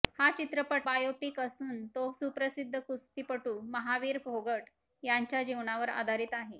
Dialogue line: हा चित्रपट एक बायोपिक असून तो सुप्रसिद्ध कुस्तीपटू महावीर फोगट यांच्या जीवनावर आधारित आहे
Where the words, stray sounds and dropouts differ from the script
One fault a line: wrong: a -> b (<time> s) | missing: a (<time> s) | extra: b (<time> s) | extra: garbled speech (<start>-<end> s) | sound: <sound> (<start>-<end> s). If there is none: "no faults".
missing: एक (0.9 s)